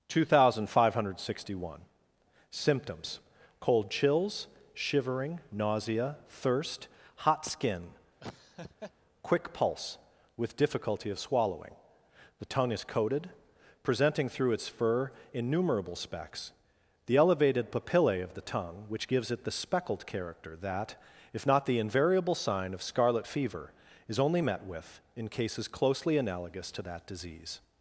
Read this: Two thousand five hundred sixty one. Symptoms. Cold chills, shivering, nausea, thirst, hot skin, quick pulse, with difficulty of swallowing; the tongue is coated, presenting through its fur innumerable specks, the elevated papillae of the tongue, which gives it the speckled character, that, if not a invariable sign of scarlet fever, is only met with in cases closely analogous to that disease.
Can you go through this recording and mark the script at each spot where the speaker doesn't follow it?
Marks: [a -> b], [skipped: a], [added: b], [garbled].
Two thousand five hundred sixty one. Symptoms. Cold chills, shivering, nausea, thirst, hot skin, quick pulse, with difficulty of swallowing; the tongue is coated, presenting through its fur innumerable specks, the elevated papillae of the tongue, which gives it the speckled character, that, if not [a -> the] invariable sign of scarlet fever, is only met with in cases closely analogous to that disease.